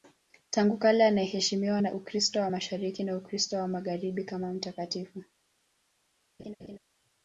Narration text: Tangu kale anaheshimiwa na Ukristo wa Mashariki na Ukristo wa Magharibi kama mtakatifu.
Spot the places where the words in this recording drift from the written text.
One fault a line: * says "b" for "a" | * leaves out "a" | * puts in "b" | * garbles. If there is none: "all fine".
all fine